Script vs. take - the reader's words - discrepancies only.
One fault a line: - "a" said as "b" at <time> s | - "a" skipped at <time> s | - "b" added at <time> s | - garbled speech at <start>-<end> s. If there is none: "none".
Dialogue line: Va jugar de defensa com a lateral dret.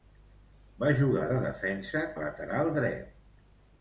- "com" skipped at 2.0 s